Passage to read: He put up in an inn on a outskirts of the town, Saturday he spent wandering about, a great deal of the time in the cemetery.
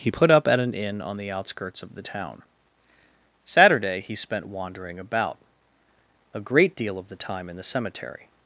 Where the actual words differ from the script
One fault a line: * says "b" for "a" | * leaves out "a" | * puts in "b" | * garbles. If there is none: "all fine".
* says "at" for "in"
* says "the" for "a"